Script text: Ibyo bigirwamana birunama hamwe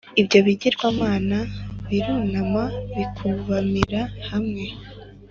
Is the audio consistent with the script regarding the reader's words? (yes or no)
no